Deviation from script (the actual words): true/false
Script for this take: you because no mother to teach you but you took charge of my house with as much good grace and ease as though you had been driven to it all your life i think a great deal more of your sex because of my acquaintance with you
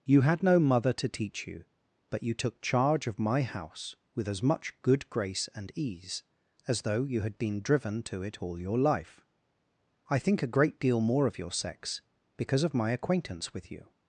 true